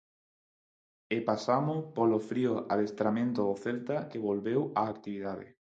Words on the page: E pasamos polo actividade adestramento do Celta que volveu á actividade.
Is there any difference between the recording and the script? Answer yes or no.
yes